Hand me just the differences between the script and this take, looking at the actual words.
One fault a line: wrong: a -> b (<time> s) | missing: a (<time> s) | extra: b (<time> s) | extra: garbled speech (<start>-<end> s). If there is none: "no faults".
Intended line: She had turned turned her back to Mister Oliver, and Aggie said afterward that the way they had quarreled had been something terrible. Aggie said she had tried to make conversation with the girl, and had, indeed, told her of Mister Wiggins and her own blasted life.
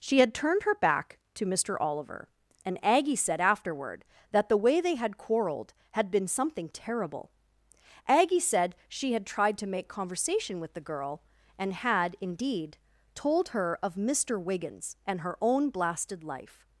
missing: turned (0.6 s)